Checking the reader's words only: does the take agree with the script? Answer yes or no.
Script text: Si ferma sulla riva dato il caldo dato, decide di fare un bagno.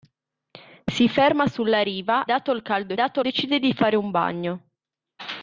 yes